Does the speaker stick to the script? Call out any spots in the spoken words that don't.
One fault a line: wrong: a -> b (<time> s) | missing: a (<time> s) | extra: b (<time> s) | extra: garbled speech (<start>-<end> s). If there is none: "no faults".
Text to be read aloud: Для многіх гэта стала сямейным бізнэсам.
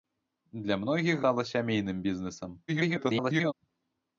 missing: гэта (1.2 s)
extra: garbled speech (2.7-3.5 s)